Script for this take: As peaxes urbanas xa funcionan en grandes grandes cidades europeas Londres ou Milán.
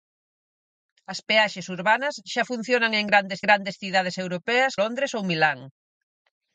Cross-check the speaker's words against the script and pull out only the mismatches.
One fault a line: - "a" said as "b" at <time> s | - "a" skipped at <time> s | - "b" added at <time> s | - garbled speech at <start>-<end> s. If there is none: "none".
none